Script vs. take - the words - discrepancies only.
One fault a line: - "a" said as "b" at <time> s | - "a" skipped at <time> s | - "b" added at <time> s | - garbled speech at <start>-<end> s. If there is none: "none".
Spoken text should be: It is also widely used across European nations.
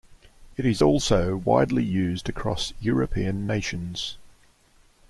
none